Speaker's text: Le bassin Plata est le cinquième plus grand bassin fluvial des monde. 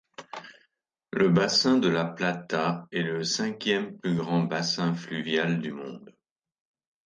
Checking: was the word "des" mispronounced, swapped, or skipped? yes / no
yes